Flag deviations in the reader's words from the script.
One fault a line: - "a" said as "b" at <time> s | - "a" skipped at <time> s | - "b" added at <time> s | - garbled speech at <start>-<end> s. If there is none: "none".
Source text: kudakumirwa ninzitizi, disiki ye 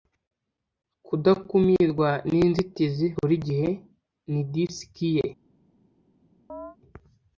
- "burigihe ni" added at 3.2 s